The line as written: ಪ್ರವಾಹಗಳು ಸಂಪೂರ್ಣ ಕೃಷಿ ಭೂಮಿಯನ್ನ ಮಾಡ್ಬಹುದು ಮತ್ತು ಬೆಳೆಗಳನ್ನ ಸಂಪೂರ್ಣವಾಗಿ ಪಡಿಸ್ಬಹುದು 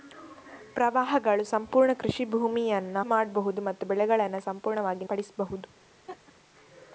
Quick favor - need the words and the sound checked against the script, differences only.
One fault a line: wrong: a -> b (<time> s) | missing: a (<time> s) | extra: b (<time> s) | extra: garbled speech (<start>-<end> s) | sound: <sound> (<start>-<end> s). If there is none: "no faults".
sound: laugh (6.1-6.3 s)